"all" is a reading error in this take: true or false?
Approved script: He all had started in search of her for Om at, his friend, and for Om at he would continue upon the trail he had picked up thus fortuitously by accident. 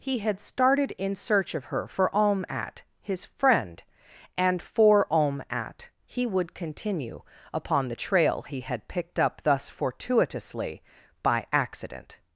true